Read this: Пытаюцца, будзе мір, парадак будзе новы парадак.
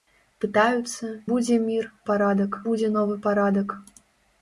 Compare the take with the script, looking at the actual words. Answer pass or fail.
pass